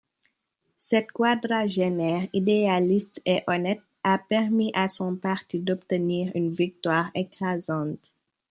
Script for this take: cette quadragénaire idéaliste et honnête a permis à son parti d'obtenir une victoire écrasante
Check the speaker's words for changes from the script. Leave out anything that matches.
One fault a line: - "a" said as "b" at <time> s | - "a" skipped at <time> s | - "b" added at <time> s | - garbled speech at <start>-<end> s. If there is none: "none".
none